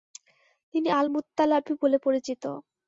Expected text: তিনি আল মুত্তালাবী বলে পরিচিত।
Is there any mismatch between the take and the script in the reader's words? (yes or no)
no